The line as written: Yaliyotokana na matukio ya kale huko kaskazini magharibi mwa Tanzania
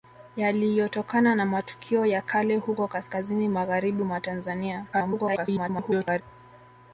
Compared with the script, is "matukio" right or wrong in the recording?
right